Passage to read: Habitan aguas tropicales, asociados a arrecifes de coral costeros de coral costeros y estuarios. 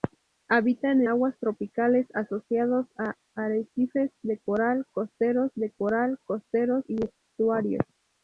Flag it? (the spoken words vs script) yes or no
no